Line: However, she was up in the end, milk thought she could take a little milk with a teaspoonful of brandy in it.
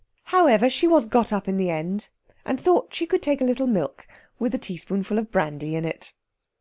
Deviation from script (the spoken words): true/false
true